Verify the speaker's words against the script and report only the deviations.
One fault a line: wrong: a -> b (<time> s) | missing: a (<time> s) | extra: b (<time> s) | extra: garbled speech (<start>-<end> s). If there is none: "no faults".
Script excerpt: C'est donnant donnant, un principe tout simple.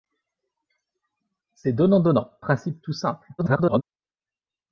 missing: un (2.3 s)
extra: garbled speech (3.4-3.8 s)